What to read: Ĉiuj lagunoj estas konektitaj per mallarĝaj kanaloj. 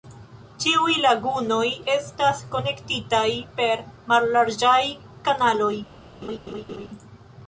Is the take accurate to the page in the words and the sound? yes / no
no